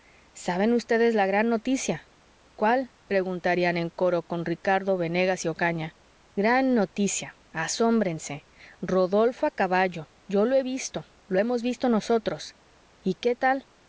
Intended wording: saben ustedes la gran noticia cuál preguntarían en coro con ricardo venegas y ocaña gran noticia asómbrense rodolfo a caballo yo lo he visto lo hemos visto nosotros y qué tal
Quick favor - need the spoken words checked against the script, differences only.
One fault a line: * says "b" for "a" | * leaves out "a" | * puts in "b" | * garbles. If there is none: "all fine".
all fine